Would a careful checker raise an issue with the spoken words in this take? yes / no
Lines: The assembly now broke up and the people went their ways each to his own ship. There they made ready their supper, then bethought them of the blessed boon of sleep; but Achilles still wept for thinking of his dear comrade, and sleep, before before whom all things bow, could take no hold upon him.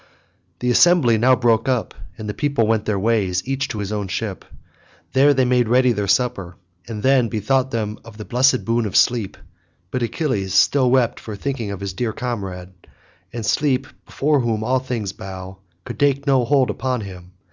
yes